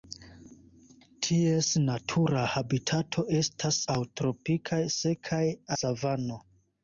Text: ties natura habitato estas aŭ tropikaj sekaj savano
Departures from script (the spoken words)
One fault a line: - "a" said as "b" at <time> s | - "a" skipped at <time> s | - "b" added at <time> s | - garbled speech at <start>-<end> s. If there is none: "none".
none